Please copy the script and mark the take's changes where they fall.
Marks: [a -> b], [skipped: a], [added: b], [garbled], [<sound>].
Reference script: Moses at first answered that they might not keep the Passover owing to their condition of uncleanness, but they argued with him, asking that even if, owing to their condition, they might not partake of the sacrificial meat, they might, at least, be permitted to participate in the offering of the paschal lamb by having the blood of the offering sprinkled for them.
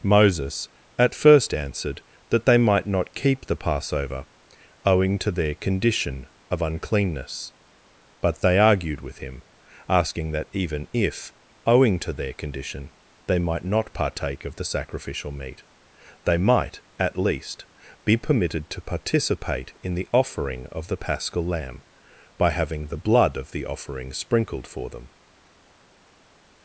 Moses at first answered that they might not keep the Passover owing to their condition of uncleanness, but they argued with him, asking that even if, owing to their condition, they might not partake of the sacrificial meat, they might, at least, be permitted to participate in the offering of the paschal lamb by having the blood of the offering sprinkled for them.